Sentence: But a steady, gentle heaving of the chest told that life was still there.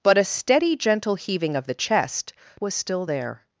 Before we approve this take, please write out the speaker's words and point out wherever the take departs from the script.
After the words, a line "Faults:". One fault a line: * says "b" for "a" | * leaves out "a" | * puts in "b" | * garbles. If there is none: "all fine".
But a steady, gentle heaving of the chest was still there.
Faults:
* leaves out "told that life"